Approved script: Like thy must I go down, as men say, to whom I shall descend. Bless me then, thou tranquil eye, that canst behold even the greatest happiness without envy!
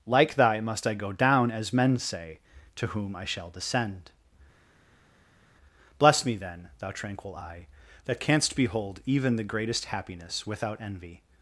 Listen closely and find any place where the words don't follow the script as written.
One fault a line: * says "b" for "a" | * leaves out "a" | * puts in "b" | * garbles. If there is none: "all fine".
all fine